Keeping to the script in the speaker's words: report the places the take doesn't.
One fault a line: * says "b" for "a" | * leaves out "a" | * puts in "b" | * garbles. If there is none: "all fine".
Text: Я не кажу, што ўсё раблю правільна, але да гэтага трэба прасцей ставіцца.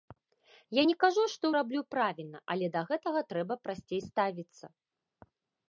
* leaves out "ўсё"